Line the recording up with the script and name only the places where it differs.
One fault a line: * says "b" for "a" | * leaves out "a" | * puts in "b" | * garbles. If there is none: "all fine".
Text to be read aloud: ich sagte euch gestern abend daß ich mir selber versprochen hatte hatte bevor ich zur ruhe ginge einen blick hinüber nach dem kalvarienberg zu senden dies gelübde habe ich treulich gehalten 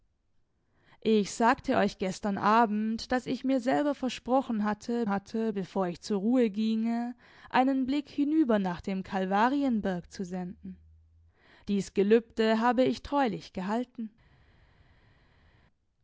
all fine